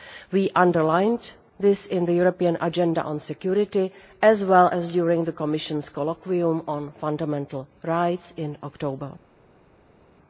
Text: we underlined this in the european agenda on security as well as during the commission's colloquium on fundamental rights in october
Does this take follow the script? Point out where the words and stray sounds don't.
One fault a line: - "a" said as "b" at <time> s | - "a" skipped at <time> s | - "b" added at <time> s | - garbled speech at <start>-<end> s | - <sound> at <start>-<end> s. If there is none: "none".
none